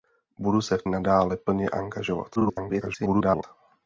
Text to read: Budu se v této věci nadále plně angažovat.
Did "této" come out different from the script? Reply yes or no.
yes